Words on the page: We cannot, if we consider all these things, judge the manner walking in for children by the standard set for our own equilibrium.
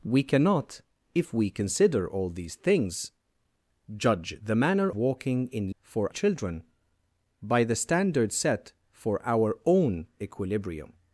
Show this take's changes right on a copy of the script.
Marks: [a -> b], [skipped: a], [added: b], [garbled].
We cannot, if we consider all these things, judge the manner walking in for children by the standard set for our own equilibrium.